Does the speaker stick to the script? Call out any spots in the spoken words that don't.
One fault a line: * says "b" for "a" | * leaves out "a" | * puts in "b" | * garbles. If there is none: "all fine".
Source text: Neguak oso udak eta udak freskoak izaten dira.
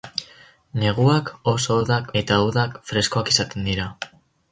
all fine